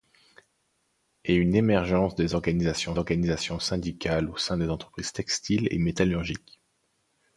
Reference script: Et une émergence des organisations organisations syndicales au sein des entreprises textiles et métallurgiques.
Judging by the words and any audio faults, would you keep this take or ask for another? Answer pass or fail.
pass